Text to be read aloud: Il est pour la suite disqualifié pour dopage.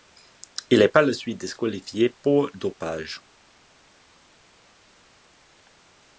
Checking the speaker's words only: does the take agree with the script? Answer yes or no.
no